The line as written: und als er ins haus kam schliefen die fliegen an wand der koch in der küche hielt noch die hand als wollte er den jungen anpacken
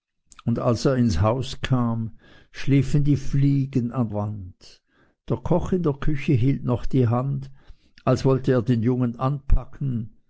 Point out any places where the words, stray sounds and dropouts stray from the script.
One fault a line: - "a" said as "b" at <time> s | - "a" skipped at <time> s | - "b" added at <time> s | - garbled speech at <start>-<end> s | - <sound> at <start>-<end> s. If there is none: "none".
none